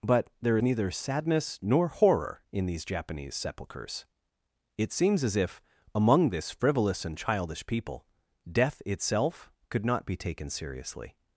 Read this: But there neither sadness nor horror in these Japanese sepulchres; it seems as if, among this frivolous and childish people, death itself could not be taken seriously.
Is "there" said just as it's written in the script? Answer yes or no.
yes